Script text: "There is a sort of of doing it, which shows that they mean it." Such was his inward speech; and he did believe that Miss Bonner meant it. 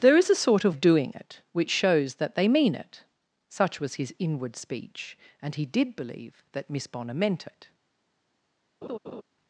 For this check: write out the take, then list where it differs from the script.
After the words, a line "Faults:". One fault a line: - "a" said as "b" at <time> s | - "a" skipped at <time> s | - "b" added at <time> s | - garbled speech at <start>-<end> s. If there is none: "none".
"There is a sort of of doing it, which shows that they mean it." Such was his inward speech; and he did believe that Miss Bonner meant it.
Faults:
none